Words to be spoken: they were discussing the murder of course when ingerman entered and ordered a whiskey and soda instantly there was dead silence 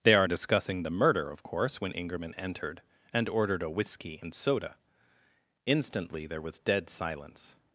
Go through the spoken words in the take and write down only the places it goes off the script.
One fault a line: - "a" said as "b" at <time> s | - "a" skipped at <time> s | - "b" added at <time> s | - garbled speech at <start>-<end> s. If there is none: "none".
- "were" said as "are" at 0.1 s